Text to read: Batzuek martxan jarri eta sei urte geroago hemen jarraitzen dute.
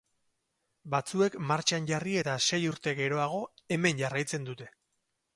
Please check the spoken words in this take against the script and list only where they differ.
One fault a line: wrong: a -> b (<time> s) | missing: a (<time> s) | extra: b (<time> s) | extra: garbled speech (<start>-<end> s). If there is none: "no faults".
no faults